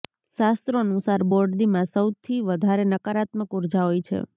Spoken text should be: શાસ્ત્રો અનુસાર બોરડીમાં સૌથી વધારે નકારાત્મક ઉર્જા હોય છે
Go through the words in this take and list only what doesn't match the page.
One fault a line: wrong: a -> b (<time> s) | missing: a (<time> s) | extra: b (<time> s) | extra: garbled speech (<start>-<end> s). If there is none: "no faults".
no faults